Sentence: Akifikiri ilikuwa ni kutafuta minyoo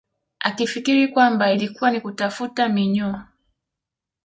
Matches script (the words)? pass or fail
fail